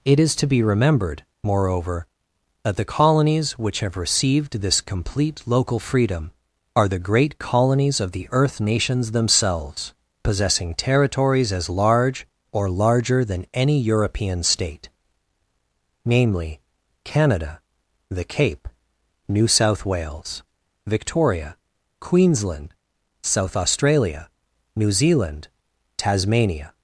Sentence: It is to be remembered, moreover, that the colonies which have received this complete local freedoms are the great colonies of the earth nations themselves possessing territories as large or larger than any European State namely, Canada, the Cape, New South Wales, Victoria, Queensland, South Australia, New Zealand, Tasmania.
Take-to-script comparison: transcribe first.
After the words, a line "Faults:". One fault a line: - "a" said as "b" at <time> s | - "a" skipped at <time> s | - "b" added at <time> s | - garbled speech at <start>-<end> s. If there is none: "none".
It is to be remembered, moreover, that the colonies which have received this complete local freedom are the great colonies of the earth nations themselves possessing territories as large or larger than any European State namely, Canada, the Cape, New South Wales, Victoria, Queensland, South Australia, New Zealand, Tasmania.
Faults:
- "freedoms" said as "freedom" at 5.8 s